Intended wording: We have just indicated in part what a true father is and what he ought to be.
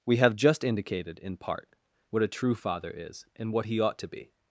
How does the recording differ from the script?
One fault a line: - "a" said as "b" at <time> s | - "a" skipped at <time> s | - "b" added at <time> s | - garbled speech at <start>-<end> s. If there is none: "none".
none